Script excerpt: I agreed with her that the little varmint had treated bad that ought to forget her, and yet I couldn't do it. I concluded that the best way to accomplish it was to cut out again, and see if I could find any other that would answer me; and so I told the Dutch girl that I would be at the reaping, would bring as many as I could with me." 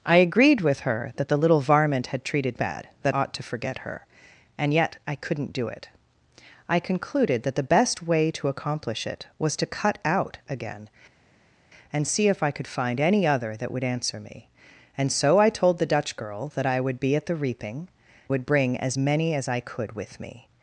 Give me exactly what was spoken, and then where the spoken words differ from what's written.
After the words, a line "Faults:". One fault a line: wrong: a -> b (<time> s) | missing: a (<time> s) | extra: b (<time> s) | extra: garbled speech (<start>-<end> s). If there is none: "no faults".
I agreed with her that the little varmint had treated bad that ought to forget her, and yet I couldn't do it. I concluded that the best way to accomplish it was to cut out again, and see if I could find any other that would answer me; and so I told the Dutch girl that I would be at the reaping, would bring as many as I could with me."
Faults:
no faults